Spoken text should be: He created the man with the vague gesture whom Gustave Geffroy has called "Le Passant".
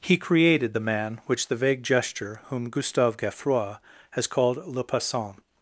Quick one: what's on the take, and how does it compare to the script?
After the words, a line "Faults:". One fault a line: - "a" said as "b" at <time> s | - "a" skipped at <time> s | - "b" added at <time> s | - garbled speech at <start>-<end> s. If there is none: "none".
He created the man which the vague gesture whom Gustave Geffroy has called "Le Passant".
Faults:
- "with" said as "which" at 1.3 s